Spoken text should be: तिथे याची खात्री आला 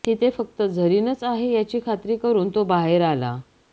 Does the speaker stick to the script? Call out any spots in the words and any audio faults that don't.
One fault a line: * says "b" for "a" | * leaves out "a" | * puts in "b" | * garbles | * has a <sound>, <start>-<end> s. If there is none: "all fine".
* puts in "फक्त झरीनच आहे"
* puts in "करून तो बाहेर"